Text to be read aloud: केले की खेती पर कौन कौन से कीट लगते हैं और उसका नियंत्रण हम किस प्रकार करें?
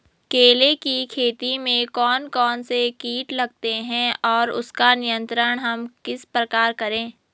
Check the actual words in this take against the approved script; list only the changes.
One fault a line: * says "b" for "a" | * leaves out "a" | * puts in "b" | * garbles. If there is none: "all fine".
* says "में" for "पर"